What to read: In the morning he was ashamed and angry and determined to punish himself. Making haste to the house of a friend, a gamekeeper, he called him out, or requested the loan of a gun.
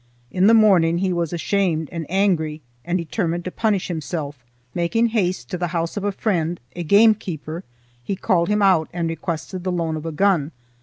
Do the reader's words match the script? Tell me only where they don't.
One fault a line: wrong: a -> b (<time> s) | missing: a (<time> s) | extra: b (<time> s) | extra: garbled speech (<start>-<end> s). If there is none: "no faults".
wrong: or -> and (8.9 s)